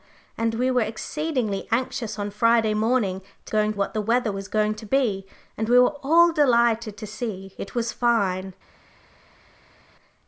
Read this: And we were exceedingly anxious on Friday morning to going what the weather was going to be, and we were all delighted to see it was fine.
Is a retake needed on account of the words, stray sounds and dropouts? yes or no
no